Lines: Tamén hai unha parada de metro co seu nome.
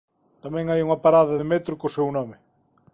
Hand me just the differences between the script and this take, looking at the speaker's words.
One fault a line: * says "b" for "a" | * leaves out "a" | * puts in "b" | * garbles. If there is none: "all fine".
all fine